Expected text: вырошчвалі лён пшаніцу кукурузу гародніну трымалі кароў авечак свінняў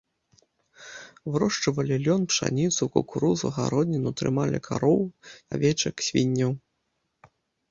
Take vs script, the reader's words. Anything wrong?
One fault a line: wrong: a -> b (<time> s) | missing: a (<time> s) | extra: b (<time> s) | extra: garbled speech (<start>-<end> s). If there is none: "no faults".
no faults